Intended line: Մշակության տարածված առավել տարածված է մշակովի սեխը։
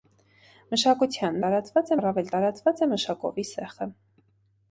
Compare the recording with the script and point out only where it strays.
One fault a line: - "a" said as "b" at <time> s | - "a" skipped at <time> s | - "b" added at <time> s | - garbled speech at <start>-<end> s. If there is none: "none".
none